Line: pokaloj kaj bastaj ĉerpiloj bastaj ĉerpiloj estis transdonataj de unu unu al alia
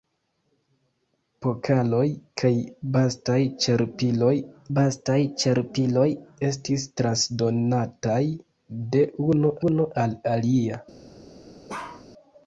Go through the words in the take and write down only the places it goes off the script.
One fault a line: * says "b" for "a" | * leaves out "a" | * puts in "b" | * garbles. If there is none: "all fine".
all fine